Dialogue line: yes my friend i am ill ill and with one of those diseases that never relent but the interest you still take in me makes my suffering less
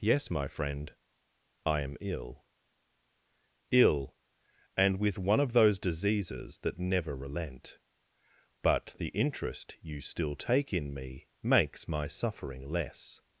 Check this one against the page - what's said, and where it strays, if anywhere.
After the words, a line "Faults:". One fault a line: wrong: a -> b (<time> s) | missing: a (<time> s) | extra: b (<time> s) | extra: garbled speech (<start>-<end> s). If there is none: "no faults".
yes my friend i am ill ill and with one of those diseases that never relent but the interest you still take in me makes my suffering less
Faults:
no faults